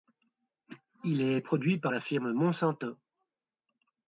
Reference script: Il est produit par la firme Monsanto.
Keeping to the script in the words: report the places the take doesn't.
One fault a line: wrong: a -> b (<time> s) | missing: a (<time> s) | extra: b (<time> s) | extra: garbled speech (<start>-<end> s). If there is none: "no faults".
no faults